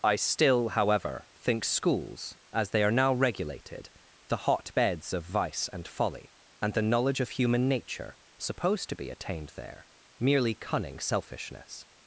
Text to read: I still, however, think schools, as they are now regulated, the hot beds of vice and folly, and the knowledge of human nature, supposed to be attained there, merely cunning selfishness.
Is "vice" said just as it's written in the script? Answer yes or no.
yes